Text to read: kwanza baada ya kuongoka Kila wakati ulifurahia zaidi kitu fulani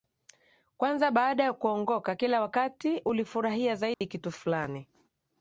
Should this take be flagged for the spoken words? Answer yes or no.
no